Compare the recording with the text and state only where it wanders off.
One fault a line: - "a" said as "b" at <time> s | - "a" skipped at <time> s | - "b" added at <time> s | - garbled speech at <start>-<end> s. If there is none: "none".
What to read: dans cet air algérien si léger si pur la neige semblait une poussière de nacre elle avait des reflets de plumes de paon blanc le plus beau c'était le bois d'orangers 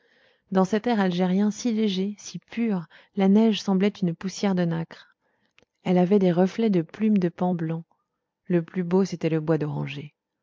none